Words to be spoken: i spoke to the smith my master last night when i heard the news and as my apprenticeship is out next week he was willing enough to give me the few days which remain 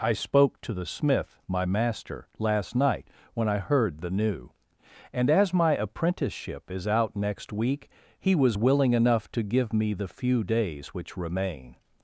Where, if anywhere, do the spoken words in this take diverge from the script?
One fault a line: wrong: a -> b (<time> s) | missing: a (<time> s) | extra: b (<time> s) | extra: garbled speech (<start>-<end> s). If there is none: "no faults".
wrong: news -> new (4.1 s)